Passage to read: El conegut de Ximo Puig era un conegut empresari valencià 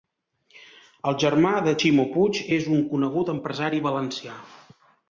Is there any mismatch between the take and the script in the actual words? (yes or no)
yes